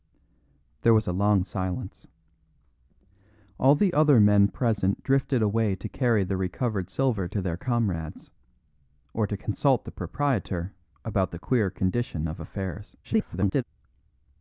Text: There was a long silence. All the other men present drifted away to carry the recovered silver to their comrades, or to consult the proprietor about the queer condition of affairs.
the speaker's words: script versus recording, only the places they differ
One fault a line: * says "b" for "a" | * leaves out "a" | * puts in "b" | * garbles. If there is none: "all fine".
* garbles